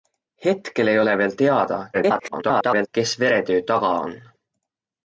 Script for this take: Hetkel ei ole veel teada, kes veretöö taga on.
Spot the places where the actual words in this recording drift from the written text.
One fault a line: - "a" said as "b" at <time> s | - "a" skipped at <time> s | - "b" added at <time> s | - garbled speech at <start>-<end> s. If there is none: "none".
- garbled speech at 1.9-2.9 s